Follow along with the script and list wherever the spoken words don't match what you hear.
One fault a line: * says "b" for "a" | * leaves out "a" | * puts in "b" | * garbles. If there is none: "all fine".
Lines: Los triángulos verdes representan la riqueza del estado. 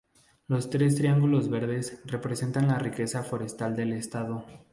* puts in "tres"
* puts in "forestal"